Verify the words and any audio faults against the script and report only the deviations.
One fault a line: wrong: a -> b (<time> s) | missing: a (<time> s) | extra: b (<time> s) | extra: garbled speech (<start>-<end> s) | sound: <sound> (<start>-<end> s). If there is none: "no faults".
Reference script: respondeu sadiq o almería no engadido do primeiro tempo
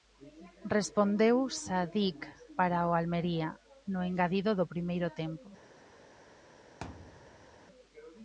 extra: para (2.6 s)
sound: thud (6.8-7.6 s)